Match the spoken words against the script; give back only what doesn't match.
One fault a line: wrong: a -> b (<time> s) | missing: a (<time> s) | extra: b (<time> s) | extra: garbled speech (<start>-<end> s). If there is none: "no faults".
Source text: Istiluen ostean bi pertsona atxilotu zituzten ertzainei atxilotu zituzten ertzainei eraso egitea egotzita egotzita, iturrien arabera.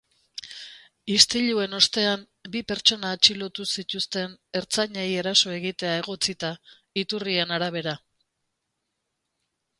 missing: atxilotu zituzten ertzainei (5.0 s)
missing: egotzita (6.5 s)